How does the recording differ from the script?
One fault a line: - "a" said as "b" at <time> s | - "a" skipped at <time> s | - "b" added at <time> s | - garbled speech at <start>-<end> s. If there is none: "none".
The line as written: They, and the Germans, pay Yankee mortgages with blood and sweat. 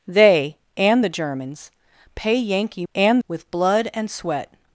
- "mortgages" said as "and" at 2.9 s